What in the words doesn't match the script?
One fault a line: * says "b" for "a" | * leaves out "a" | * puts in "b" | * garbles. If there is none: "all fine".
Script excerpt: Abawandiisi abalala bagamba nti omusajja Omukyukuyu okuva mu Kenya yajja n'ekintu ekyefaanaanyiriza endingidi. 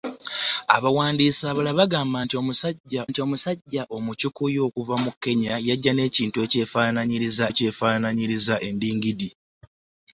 * puts in "nti omusajja"
* puts in "ekyefaanaanyiriza"